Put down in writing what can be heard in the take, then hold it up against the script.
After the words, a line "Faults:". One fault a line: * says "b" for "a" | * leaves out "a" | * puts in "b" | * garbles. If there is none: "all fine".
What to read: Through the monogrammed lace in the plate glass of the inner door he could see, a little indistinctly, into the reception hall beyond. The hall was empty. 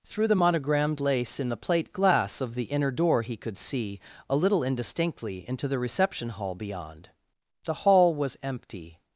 Through the monogrammed lace in the plate glass of the inner door he could see, a little indistinctly, into the reception hall beyond. The hall was empty.
Faults:
all fine